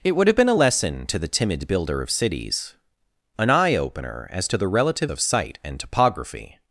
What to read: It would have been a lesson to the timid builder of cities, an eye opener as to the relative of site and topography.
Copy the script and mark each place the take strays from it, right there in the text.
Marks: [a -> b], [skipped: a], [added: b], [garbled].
It would have been a lesson to the timid builder of cities, an eye opener as to the relative of site and topography.